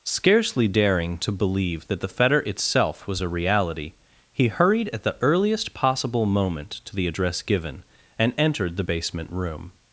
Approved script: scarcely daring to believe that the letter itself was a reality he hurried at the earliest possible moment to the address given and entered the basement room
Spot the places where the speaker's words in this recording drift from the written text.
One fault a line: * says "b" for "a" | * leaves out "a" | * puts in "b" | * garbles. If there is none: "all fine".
* says "fetter" for "letter"